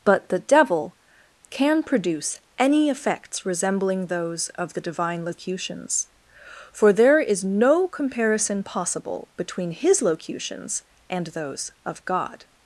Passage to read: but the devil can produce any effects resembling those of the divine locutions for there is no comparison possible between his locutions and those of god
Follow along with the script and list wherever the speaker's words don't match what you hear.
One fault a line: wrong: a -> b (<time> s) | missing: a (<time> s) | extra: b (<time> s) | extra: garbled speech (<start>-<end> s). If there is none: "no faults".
no faults